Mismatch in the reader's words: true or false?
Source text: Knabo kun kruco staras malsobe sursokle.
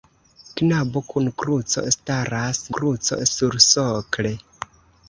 true